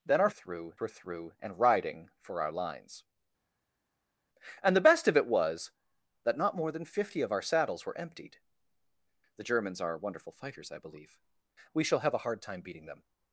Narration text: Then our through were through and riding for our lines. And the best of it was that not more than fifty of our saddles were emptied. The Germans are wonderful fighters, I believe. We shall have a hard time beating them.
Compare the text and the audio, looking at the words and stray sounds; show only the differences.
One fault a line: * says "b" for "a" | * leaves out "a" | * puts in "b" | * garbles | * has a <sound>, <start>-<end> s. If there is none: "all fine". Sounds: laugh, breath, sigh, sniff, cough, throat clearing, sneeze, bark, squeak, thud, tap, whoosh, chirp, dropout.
all fine